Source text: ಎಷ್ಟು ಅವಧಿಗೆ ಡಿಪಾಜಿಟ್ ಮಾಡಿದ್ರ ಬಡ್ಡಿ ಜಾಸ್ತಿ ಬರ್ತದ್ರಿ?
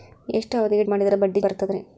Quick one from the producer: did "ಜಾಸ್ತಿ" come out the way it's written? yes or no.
no